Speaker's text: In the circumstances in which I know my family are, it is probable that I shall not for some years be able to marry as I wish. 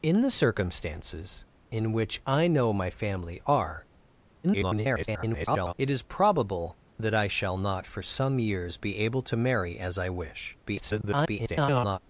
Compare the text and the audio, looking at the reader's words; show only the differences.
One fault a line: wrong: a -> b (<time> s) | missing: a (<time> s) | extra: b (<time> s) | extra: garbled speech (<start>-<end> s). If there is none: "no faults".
extra: garbled speech (4.4-5.7 s)
extra: garbled speech (10.7-12.0 s)